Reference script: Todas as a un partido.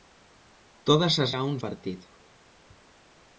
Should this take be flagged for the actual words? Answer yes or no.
no